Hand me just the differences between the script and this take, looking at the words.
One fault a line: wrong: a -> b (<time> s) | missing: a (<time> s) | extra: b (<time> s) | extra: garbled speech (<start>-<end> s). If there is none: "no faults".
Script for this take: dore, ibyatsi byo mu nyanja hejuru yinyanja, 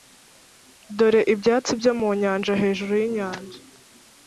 no faults